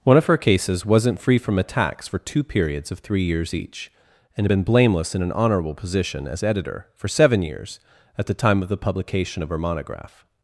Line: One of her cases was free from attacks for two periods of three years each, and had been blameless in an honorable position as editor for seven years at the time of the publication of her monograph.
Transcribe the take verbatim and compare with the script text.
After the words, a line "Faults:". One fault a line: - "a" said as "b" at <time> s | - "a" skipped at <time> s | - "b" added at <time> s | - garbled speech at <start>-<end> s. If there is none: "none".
One of her cases wasn't free from attacks for two periods of three years each, and had been blameless in an honorable position as editor for seven years at the time of the publication of her monograph.
Faults:
- "was" said as "wasn't" at 0.8 s